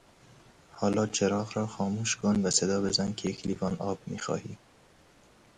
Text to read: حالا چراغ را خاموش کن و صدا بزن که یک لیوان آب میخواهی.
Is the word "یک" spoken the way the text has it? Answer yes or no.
yes